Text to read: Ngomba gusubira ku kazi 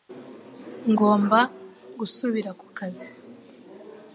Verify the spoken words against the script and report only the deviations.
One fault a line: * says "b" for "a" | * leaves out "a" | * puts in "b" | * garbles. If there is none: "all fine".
all fine